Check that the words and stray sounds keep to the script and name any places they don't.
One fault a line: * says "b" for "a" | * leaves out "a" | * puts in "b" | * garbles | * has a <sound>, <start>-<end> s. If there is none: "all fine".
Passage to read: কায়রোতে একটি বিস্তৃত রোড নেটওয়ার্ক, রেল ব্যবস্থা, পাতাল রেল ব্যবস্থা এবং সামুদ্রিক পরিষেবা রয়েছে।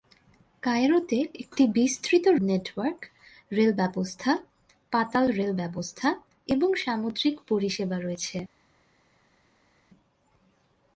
* leaves out "রোড"